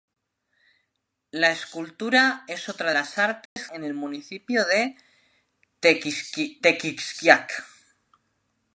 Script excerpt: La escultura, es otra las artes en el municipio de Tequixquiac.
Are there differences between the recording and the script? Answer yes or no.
no